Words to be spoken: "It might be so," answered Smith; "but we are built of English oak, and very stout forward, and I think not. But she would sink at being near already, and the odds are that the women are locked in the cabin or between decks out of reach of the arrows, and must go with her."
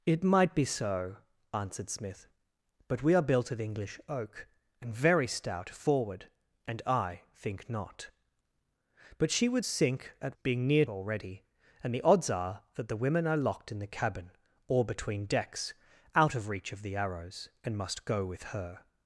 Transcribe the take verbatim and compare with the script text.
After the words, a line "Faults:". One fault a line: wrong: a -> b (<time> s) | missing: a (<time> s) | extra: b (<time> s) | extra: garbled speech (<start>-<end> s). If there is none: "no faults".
"It might be so," answered Smith; "but we are built of English oak, and very stout forward, and I think not. But she would sink at being near already, and the odds are that the women are locked in the cabin or between decks out of reach of the arrows, and must go with her."
Faults:
no faults